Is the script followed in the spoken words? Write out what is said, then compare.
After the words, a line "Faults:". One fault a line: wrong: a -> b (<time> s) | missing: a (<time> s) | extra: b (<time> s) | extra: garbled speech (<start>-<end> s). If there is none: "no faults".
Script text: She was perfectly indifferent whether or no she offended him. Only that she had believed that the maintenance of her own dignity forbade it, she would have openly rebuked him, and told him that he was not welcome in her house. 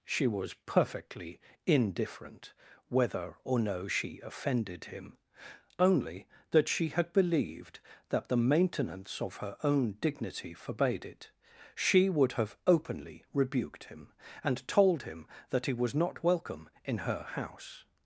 She was perfectly indifferent whether or no she offended him. Only that she had believed that the maintenance of her own dignity forbade it, she would have openly rebuked him, and told him that he was not welcome in her house.
Faults:
no faults